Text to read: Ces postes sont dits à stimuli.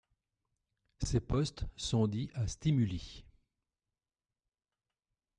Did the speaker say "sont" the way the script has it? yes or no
yes